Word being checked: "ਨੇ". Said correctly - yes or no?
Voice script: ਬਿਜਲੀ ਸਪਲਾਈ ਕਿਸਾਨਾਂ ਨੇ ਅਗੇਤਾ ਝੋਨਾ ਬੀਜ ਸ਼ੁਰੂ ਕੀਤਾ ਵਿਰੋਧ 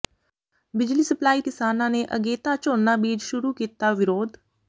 yes